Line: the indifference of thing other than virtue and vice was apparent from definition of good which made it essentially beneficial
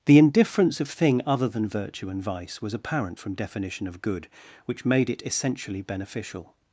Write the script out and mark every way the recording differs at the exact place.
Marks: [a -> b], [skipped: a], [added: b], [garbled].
the indifference of thing other than virtue and vice was apparent from definition of good which made it essentially beneficial